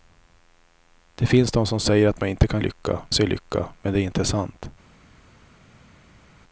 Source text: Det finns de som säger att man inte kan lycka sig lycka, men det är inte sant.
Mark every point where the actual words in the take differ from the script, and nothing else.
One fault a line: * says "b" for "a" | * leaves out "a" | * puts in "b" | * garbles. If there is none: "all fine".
all fine